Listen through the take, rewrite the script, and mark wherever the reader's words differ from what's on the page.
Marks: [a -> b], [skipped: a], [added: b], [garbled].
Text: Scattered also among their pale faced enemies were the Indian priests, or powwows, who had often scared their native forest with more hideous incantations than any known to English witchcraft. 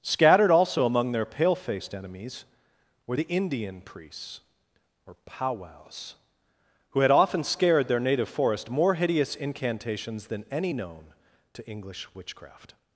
Scattered also among their pale faced enemies were the Indian priests, or powwows, who had often scared their native forest [skipped: with] more hideous incantations than any known to English witchcraft.